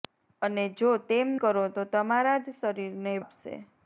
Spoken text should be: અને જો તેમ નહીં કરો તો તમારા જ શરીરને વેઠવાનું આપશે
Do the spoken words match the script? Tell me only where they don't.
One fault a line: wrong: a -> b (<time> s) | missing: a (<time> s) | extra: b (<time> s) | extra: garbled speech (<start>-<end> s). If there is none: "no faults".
missing: નહીં (1.3 s)
missing: વેઠવાનું (3.2 s)